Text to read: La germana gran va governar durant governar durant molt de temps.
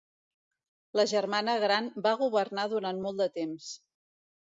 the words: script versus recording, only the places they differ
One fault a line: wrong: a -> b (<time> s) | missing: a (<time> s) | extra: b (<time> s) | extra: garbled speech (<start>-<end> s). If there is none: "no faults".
missing: governar durant (3.1 s)